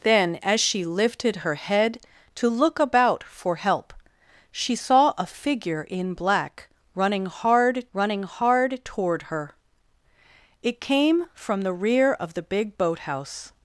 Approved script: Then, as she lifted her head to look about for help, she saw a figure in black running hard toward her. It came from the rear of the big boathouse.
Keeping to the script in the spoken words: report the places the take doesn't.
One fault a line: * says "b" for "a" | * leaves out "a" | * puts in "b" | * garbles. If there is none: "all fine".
* puts in "running hard"